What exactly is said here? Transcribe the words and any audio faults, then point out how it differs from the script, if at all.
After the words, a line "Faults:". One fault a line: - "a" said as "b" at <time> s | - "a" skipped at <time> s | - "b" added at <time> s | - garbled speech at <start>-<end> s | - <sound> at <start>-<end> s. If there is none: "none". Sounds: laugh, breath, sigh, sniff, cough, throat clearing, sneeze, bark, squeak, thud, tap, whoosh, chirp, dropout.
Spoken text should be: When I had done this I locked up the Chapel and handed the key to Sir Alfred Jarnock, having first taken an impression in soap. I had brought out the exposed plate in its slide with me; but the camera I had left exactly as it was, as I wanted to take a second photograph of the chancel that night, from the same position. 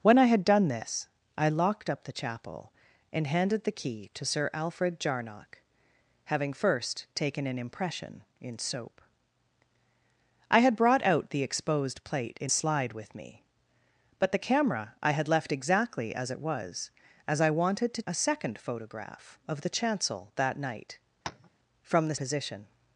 When I had done this I locked up the Chapel and handed the key to Sir Alfred Jarnock, having first taken an impression in soap. I had brought out the exposed plate in slide with me; but the camera I had left exactly as it was, as I wanted to a second photograph of the chancel that night, from the position.
Faults:
- "its" skipped at 12.5 s
- "take" skipped at 18.0 s
- tap at 21.2-21.5 s
- "same" skipped at 22.2 s